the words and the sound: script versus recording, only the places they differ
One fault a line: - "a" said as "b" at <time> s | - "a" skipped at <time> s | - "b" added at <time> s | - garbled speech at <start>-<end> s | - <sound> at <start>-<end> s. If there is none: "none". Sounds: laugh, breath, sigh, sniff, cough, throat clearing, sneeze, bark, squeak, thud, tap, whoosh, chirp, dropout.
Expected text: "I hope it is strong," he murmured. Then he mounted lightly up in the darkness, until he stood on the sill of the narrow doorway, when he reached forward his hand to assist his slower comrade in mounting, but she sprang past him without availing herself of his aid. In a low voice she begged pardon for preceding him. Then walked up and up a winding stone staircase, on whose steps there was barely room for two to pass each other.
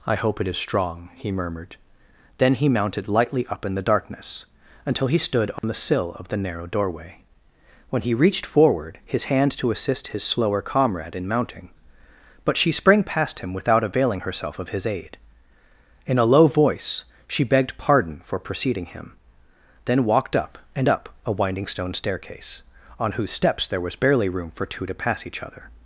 - dropout at 5.6-5.6 s